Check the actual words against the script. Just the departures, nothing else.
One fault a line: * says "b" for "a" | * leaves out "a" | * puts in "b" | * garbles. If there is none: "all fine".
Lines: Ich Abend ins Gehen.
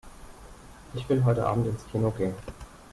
* puts in "will heute"
* puts in "Kino"